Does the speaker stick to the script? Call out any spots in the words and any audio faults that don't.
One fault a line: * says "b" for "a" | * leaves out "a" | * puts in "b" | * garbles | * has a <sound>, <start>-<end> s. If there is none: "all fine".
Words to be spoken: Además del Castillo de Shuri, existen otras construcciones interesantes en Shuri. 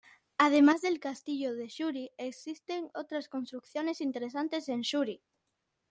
all fine